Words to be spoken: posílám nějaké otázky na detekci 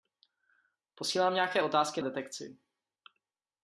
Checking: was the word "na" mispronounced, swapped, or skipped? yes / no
yes